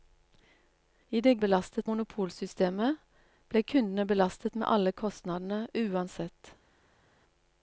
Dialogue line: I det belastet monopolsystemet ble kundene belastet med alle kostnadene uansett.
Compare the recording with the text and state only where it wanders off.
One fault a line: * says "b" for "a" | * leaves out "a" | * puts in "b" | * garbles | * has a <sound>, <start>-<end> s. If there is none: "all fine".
all fine